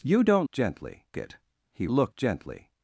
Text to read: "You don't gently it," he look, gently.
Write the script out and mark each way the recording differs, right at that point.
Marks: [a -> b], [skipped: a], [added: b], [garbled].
"You don't gently it," he look, gently.